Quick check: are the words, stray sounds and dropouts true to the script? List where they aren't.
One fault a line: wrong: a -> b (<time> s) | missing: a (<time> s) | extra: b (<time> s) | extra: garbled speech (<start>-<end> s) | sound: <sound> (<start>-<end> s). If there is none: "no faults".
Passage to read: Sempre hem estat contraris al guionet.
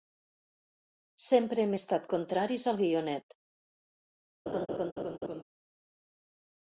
sound: laugh (4.5-5.4 s)